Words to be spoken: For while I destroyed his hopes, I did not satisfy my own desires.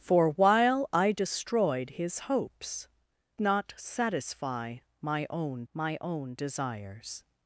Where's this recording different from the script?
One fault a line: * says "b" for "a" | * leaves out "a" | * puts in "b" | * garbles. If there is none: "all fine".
* says "not satisfy my own" for "I did not satisfy"